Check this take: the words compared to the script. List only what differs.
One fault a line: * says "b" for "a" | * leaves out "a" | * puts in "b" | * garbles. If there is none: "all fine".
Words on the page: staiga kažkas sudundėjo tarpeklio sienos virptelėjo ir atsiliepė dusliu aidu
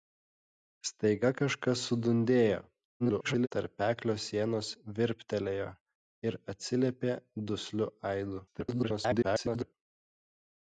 * garbles
* garbles